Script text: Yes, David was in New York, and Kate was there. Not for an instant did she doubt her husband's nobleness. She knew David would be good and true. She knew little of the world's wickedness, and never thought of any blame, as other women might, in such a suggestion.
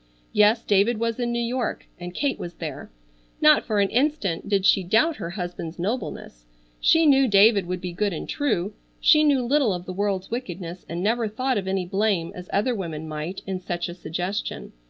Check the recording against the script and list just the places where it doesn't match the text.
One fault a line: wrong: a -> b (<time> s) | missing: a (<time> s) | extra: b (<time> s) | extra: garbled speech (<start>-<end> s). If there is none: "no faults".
no faults